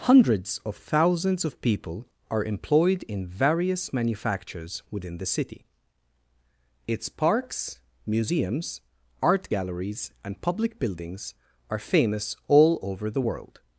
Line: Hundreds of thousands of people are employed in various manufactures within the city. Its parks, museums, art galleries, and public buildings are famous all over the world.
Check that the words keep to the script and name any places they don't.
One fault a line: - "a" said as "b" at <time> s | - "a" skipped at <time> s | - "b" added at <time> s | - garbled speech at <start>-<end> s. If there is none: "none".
none